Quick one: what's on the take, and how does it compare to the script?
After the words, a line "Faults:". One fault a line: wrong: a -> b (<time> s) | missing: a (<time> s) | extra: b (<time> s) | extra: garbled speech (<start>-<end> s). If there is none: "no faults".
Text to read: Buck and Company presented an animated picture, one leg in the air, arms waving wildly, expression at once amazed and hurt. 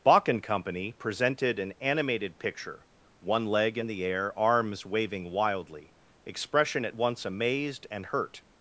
Bach and Company presented an animated picture, one leg in the air, arms waving wildly, expression at once amazed and hurt.
Faults:
wrong: Buck -> Bach (0.0 s)